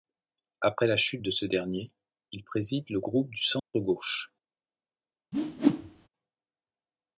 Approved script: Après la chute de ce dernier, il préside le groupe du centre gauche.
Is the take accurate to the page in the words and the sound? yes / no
no